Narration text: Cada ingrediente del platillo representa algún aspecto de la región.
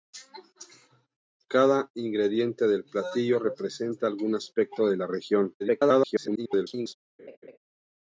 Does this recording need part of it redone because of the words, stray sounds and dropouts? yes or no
yes